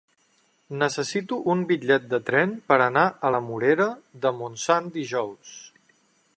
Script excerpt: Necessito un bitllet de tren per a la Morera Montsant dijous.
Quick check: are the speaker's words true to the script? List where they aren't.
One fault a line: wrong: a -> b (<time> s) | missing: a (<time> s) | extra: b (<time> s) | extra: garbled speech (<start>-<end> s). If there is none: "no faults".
extra: anar (2.9 s)
extra: de (4.3 s)